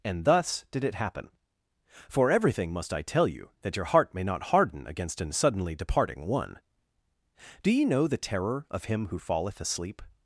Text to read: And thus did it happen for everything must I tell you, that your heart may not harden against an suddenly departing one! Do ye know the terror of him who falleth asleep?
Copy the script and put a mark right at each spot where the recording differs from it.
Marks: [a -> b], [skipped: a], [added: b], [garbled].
And thus did it happen for everything must I tell you, that your heart may not harden against an suddenly departing one! Do ye know the terror of him who falleth asleep?